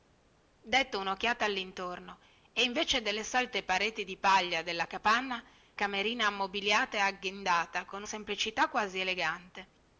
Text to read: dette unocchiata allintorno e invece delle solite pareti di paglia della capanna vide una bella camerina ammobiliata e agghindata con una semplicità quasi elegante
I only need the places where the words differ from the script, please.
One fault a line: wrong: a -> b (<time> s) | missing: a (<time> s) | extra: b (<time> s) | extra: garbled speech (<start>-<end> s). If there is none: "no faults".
missing: vide una bella (5.4 s)
missing: una (8.0 s)